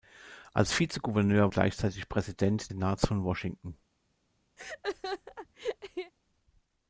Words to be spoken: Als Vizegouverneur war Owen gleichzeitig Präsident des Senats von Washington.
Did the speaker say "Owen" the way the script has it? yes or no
no